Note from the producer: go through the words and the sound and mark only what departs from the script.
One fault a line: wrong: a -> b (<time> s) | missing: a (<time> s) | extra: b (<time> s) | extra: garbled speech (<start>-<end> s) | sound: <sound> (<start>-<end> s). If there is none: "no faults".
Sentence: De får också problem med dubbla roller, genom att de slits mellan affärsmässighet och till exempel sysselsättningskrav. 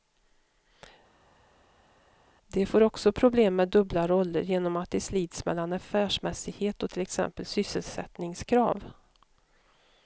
no faults